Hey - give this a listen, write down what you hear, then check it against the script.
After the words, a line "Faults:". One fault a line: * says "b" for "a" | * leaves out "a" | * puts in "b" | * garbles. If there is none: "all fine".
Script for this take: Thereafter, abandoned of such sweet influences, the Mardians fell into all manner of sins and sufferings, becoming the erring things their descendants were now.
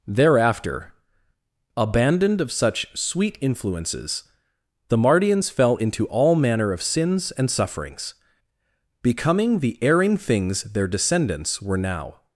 Thereafter, abandoned of such sweet influences, the Mardians fell into all manner of sins and sufferings, becoming the erring things their descendants were now.
Faults:
all fine